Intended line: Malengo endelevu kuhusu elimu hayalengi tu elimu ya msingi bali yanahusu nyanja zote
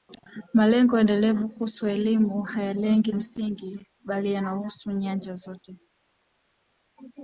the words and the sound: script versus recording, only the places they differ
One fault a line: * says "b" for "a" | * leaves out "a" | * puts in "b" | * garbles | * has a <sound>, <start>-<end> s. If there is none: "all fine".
* leaves out "tu elimu ya"